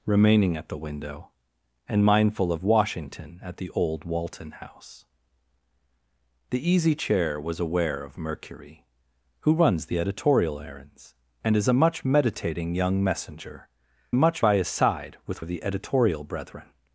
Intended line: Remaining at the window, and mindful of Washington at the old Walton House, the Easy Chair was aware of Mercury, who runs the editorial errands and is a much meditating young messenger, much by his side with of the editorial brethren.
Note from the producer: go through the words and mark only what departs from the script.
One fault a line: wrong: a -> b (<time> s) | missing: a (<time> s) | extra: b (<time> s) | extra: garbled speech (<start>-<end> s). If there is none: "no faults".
no faults